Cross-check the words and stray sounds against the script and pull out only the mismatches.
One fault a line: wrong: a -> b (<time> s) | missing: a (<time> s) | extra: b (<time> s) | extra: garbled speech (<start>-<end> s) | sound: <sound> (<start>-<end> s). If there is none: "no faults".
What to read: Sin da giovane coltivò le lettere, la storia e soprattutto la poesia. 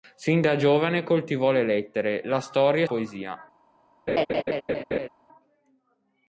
missing: soprattutto la (2.9 s)
sound: laugh (4.1-5.1 s)